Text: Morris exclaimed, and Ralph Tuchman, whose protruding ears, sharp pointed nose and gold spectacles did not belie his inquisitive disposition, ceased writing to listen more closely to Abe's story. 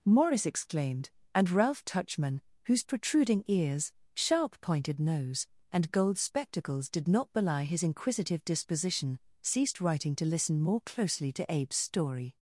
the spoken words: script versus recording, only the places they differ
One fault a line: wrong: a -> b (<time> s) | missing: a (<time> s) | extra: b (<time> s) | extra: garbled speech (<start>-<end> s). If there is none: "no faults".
no faults